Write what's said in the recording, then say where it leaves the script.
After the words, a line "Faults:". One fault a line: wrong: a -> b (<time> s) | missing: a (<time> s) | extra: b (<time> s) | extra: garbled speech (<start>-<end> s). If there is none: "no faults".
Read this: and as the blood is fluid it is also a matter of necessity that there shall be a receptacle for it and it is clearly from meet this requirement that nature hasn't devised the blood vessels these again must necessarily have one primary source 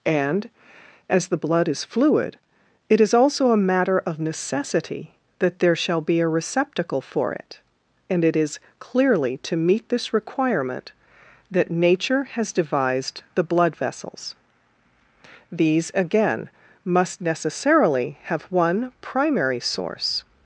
and as the blood is fluid it is also a matter of necessity that there shall be a receptacle for it and it is clearly to meet this requirement that nature has devised the blood vessels these again must necessarily have one primary source
Faults:
wrong: from -> to (9.4 s)
wrong: hasn't -> has (12.2 s)